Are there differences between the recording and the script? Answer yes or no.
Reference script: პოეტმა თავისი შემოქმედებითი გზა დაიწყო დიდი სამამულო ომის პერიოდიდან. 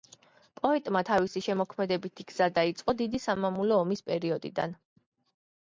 no